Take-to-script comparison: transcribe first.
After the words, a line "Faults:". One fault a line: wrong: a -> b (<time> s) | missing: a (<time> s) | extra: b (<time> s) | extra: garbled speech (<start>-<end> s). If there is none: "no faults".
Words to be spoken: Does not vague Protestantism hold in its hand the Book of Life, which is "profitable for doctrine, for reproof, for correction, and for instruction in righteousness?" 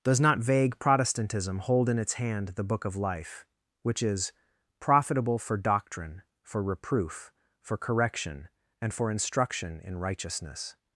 Does not vague Protestantism hold in its hand the Book of Life, which is "profitable for doctrine, for reproof, for correction, and for instruction in righteousness?"
Faults:
no faults